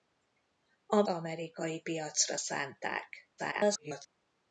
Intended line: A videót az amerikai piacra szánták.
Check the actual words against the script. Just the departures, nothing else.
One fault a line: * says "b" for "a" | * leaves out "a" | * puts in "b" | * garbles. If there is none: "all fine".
* leaves out "videót az"
* garbles